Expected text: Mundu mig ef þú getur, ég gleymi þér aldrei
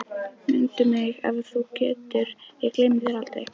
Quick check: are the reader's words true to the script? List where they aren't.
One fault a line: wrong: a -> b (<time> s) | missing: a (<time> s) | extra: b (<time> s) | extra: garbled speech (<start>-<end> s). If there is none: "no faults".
no faults